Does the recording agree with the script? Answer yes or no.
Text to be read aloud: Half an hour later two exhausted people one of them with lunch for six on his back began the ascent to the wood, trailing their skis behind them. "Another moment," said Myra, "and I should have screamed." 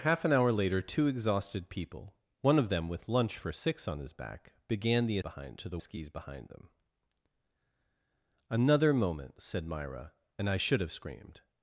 no